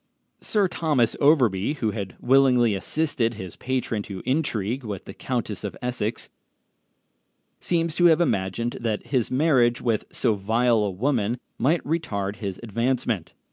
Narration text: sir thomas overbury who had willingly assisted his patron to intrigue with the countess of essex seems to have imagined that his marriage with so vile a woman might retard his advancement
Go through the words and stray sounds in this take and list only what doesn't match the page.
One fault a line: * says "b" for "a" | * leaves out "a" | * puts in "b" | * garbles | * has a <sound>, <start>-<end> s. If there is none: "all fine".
all fine